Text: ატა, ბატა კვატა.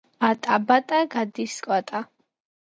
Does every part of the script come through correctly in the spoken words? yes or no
no